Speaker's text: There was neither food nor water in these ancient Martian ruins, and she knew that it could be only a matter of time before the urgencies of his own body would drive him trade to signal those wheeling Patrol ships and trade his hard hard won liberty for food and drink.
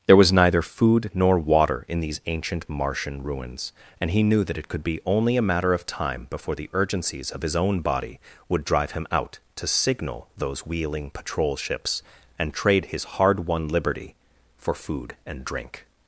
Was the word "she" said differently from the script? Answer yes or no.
yes